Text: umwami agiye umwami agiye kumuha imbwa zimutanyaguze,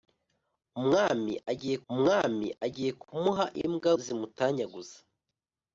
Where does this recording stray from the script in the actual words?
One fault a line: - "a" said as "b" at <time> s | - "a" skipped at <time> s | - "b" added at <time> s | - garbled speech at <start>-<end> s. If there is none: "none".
none